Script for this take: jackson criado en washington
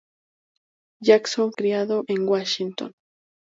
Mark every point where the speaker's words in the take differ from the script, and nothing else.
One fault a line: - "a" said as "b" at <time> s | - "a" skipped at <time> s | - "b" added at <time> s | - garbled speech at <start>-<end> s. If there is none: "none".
none